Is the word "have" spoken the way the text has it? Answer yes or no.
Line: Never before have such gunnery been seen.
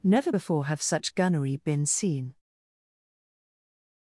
yes